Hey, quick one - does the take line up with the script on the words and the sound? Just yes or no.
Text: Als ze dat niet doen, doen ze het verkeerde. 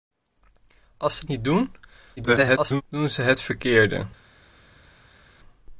no